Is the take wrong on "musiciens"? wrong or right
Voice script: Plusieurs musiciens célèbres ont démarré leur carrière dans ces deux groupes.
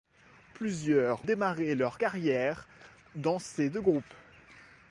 wrong